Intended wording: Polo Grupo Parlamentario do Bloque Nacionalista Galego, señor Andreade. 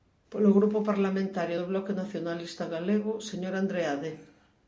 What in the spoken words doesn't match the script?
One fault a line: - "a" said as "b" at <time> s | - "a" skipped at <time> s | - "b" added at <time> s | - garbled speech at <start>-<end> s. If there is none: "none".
none